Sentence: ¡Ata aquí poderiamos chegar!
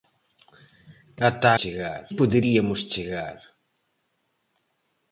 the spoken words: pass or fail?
fail